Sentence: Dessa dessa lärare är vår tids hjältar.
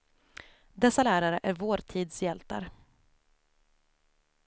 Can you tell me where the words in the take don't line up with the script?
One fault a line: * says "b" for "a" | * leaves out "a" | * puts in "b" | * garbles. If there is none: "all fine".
* leaves out "dessa"